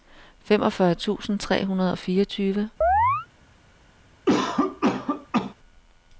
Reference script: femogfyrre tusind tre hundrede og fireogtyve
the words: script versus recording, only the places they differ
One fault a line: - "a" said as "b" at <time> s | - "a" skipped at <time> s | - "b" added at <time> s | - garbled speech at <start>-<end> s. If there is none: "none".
none